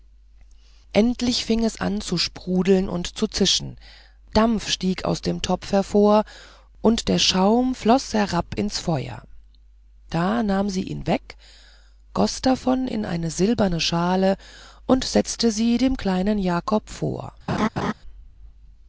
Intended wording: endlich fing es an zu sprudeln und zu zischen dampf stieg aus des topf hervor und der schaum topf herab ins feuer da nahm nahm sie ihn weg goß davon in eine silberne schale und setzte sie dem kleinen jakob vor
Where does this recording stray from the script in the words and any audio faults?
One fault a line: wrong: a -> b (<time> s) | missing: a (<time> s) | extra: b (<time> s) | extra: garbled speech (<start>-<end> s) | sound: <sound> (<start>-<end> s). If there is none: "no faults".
wrong: des -> dem (5.2 s)
wrong: topf -> floß (7.8 s)
missing: nahm (10.7 s)
sound: laugh (17.5-17.9 s)